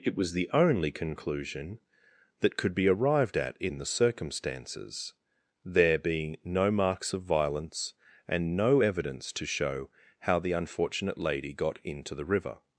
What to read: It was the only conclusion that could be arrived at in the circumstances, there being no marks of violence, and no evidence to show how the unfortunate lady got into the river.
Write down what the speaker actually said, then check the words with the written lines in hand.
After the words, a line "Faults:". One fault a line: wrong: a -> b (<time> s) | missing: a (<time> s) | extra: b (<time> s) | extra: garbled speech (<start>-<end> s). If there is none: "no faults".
It was the only conclusion that could be arrived at in the circumstances, there being no marks of violence, and no evidence to show how the unfortunate lady got into the river.
Faults:
no faults